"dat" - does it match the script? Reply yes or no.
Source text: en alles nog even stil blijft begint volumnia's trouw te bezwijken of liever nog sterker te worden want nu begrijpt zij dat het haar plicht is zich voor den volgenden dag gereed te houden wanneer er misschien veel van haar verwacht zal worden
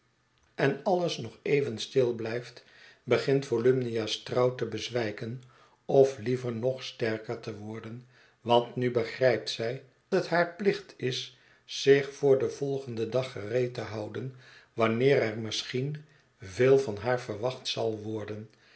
no